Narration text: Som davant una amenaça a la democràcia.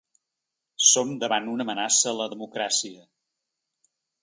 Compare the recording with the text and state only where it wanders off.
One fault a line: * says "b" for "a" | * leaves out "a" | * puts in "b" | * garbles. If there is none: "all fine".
all fine